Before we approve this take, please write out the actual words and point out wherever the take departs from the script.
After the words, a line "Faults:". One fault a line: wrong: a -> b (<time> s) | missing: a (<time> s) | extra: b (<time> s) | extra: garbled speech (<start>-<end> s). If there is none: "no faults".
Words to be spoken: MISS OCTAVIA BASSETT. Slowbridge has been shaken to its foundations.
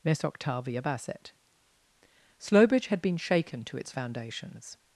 MISS OCTAVIA BASSETT. Slowbridge had been shaken to its foundations.
Faults:
wrong: has -> had (2.9 s)